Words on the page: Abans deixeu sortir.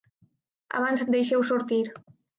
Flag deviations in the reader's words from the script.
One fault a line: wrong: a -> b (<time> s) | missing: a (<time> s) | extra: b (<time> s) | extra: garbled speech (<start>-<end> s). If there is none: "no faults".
no faults